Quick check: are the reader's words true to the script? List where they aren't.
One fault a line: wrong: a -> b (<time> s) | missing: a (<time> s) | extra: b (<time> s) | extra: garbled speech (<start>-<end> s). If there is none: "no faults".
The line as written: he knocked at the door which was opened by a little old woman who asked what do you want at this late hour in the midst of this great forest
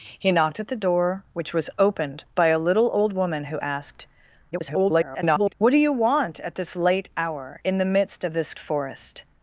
extra: garbled speech (4.5-5.5 s)
missing: great (8.5 s)